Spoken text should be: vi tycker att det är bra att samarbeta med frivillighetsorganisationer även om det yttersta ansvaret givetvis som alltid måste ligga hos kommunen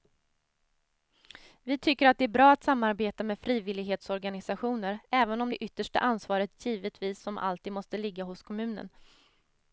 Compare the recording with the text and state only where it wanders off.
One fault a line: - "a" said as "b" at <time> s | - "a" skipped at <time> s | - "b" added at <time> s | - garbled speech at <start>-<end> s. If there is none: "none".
none